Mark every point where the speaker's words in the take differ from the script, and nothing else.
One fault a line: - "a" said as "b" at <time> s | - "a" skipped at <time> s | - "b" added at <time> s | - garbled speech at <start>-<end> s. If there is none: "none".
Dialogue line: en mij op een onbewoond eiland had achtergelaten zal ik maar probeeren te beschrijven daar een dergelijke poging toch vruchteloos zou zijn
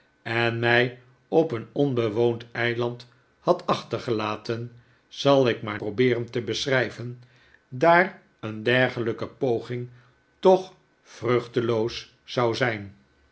none